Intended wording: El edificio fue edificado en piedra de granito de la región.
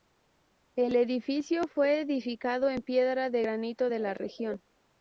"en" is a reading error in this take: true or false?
false